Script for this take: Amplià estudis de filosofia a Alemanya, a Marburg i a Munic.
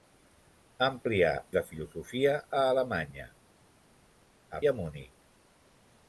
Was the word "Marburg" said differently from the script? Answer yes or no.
yes